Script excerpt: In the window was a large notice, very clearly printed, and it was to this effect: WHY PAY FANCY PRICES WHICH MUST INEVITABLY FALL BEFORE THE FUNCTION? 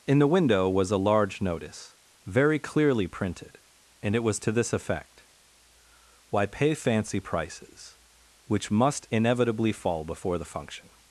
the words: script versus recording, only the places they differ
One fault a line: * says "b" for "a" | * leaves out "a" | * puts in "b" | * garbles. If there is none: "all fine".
all fine